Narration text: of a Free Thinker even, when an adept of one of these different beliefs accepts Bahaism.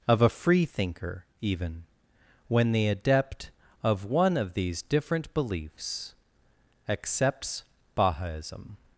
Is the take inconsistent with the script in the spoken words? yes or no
yes